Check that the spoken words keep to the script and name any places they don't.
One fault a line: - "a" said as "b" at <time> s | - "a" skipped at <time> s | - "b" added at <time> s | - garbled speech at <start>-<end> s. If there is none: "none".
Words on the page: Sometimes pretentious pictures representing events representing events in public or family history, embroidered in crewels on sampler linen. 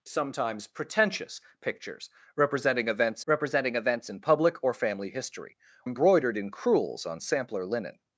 none